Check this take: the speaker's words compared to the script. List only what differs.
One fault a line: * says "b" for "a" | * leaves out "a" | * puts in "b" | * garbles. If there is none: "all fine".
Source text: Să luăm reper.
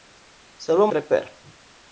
all fine